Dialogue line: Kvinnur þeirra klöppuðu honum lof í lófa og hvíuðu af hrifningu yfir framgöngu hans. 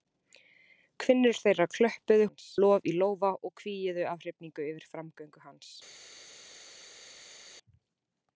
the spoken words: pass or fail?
fail